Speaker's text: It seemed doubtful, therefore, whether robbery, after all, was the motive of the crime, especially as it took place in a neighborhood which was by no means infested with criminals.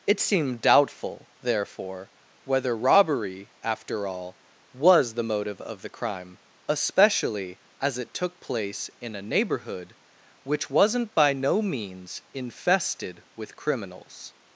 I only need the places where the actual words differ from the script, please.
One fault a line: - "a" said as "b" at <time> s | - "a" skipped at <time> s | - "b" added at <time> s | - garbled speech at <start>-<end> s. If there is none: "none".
- "was" said as "wasn't" at 10.7 s